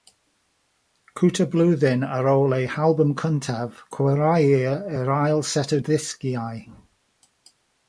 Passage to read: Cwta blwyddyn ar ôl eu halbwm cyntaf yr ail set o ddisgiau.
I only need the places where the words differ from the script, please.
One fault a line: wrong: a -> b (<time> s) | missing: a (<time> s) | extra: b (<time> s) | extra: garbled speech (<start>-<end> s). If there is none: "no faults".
extra: chwaraeir (4.0 s)